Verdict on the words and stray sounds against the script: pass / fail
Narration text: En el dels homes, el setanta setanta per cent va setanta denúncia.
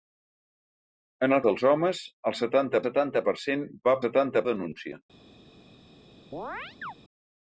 fail